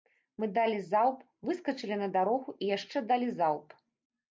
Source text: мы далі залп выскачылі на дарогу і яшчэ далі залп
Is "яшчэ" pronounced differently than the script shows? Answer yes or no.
no